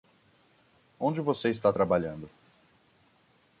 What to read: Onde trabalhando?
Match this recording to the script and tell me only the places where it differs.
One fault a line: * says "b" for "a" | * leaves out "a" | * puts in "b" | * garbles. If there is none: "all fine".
* puts in "você está"